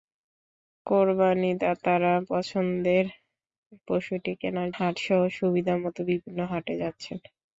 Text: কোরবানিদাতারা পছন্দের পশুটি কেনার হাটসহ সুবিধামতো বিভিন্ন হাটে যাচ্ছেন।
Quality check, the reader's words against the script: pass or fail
pass